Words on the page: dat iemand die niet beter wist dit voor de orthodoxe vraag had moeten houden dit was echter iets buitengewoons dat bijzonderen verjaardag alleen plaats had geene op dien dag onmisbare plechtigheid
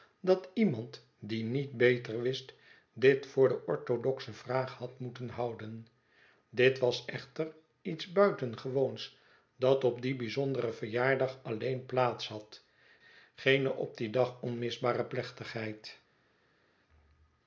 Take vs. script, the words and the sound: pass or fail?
fail